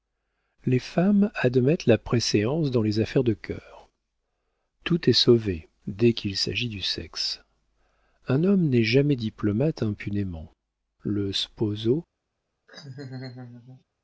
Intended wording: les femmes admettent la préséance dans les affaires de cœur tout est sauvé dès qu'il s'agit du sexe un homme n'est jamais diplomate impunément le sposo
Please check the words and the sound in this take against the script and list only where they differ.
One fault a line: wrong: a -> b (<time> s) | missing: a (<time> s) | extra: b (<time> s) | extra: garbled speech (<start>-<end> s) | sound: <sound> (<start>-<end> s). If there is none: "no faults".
sound: laugh (12.7-13.8 s)